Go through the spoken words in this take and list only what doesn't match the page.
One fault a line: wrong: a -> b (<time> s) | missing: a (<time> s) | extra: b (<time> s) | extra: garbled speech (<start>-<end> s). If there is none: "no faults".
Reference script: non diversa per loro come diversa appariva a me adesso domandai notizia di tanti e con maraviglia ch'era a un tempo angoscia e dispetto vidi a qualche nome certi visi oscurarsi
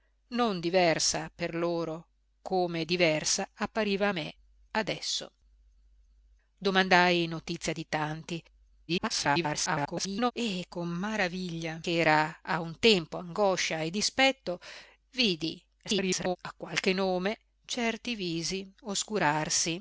extra: garbled speech (8.9-10.3 s)
extra: garbled speech (15.8-16.4 s)